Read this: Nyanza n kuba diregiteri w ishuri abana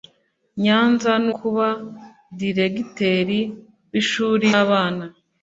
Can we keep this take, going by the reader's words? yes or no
yes